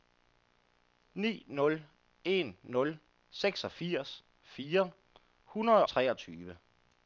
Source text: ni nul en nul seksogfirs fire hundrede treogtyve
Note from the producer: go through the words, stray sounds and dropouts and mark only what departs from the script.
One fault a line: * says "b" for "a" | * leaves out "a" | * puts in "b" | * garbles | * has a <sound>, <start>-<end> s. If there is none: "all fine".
all fine